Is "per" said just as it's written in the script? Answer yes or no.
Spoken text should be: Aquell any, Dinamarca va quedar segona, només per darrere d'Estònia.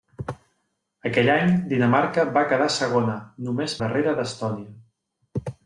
no